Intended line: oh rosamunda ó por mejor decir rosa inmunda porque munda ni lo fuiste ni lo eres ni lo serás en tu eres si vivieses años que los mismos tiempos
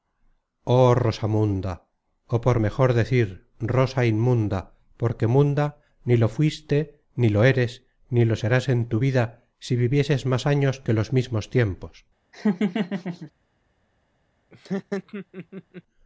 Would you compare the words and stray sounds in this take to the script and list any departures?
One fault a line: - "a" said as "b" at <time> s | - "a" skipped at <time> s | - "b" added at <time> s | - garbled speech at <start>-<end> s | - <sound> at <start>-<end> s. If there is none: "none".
- "eres" said as "vida" at 9.0 s
- "más" added at 10.2 s
- laugh at 12.3-13.3 s
- laugh at 14.5-15.8 s